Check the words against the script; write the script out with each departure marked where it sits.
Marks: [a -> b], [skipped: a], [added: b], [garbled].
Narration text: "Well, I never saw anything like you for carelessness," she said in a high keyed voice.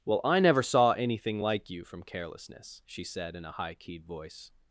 "Well, I never saw anything like you [for -> from] carelessness," she said in a high keyed voice.